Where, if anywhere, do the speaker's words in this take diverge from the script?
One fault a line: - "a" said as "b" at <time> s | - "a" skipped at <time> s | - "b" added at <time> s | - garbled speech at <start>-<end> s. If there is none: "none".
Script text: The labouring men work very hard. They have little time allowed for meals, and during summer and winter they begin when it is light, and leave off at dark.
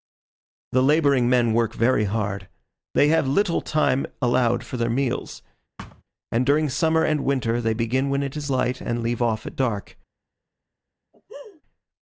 - "their" added at 4.8 s